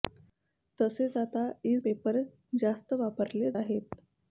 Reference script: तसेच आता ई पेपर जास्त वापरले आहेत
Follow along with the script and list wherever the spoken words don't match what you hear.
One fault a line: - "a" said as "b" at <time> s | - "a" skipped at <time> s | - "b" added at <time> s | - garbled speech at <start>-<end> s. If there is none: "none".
none